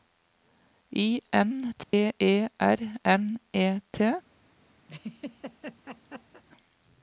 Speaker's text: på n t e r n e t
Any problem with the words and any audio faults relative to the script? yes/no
yes